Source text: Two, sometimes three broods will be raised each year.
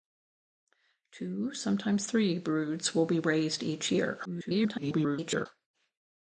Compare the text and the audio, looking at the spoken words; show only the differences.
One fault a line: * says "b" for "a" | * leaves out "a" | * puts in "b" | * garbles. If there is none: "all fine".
* garbles